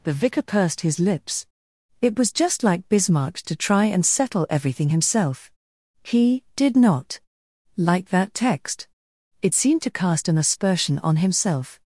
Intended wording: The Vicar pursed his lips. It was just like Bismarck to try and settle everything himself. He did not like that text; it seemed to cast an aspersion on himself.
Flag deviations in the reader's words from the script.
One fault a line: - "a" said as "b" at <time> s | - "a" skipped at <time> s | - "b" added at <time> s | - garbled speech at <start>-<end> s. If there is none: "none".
none